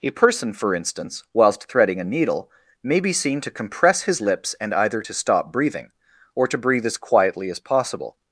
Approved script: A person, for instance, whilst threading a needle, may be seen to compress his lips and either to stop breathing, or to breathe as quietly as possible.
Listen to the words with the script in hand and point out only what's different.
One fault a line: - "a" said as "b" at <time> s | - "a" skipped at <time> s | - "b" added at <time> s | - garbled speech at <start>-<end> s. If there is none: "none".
none